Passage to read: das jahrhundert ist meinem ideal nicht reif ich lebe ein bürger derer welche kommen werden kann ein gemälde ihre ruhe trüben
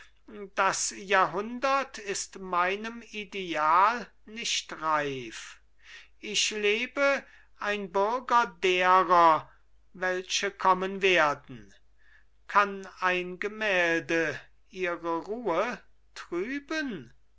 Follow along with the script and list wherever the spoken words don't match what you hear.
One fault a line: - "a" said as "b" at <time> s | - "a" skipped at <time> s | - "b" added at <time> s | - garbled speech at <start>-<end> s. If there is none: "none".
none